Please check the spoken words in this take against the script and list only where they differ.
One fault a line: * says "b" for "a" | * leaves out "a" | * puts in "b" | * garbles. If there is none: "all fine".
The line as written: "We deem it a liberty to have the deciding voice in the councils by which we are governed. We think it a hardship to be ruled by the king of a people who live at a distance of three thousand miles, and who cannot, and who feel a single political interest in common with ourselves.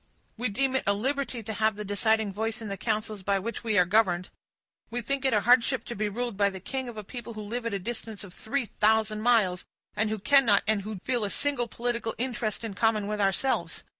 all fine